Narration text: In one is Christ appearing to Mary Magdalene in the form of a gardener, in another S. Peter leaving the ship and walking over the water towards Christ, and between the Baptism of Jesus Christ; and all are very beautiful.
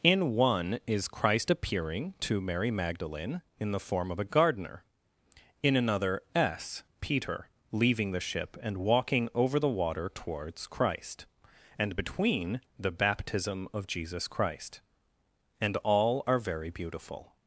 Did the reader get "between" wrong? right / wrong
right